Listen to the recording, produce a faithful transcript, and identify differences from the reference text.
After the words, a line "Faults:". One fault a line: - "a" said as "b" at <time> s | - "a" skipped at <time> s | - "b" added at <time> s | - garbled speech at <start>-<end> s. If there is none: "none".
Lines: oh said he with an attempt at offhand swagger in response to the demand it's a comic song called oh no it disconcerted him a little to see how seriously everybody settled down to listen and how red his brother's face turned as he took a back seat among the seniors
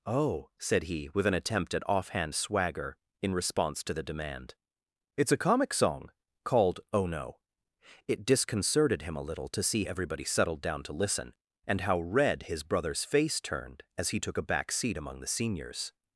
oh said he with an attempt at offhand swagger in response to the demand it's a comic song called oh no it disconcerted him a little to see everybody settled down to listen and how red his brother's face turned as he took a back seat among the seniors
Faults:
- "how seriously" skipped at 9.8 s